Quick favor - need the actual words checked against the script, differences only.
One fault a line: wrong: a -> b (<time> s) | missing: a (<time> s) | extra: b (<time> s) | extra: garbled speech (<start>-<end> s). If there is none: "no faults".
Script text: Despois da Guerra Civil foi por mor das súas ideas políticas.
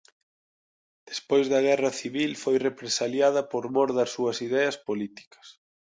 extra: represaliada (2.7 s)